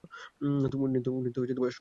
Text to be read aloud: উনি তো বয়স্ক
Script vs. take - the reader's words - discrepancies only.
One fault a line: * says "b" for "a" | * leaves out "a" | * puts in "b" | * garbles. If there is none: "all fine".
all fine